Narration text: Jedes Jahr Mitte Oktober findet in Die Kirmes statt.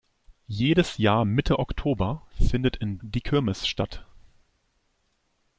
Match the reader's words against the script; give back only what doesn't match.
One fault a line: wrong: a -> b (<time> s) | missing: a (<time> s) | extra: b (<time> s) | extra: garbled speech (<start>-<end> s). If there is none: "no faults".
no faults